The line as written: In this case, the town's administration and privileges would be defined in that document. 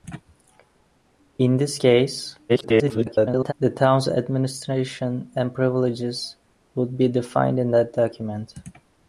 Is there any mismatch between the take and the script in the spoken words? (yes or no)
yes